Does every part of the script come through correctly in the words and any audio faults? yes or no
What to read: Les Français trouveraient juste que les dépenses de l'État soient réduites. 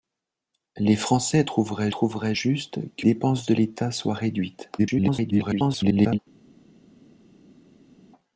no